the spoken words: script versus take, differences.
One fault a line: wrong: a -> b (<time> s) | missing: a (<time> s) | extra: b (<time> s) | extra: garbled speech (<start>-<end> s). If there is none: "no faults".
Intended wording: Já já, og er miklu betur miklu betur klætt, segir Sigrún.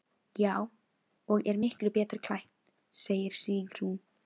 missing: já (0.5 s)
missing: miklu betur (2.2 s)